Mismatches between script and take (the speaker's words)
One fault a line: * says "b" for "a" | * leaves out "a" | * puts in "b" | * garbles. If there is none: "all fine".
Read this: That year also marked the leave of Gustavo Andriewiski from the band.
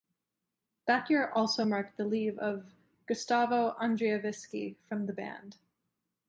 all fine